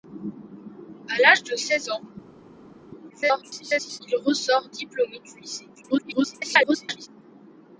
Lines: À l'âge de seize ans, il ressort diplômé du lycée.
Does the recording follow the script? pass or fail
fail